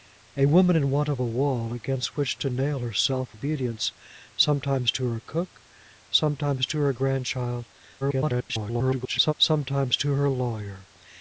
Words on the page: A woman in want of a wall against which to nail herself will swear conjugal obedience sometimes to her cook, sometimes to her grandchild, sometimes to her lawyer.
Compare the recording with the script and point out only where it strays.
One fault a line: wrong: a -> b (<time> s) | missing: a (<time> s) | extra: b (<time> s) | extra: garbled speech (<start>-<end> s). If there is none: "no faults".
missing: will swear conjugal (3.4 s)
extra: garbled speech (8.0-9.3 s)